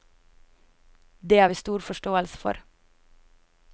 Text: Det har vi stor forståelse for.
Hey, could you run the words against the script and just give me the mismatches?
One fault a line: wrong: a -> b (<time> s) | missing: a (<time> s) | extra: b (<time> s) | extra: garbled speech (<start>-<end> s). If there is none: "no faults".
no faults